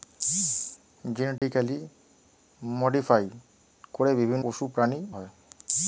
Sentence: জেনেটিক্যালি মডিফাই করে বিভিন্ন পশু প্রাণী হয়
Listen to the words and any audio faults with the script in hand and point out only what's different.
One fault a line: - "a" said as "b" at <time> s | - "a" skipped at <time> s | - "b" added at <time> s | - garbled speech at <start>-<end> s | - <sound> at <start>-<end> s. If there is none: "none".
- dropout at 1.4-1.4 s